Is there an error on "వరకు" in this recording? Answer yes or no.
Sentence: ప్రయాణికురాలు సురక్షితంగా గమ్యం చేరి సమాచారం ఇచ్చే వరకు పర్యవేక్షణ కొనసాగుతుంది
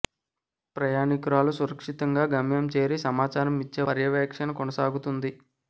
yes